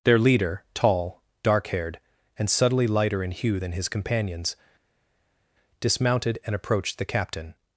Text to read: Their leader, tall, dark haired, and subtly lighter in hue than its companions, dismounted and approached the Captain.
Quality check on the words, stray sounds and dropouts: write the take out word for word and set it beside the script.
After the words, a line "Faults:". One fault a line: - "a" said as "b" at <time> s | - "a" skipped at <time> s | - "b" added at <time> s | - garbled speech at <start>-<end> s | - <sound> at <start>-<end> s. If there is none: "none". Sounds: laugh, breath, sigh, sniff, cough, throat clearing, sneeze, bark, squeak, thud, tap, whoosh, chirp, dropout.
Their leader, tall, dark haired, and subtly lighter in hue than his companions, dismounted and approached the Captain.
Faults:
- "its" said as "his" at 3.7 s